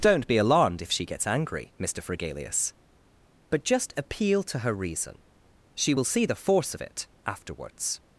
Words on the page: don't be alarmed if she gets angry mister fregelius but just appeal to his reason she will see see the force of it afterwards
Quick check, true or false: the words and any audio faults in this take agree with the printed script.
false